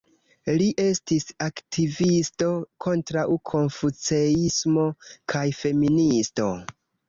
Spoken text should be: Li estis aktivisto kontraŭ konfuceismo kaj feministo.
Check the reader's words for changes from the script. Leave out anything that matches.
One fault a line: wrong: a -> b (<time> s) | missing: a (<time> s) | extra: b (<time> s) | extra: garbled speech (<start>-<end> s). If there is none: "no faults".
no faults